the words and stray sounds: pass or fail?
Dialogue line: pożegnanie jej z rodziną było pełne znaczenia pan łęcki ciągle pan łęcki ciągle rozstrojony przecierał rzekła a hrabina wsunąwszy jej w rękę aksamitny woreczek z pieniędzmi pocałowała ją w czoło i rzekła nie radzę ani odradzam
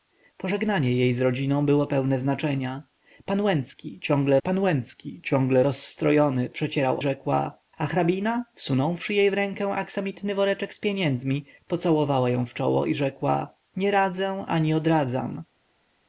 pass